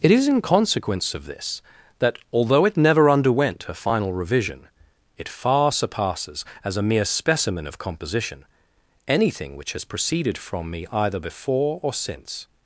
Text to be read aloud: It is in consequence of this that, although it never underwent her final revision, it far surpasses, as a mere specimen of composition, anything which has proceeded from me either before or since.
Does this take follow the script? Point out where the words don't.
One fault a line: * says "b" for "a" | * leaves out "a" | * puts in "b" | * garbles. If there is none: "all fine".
* says "a" for "her"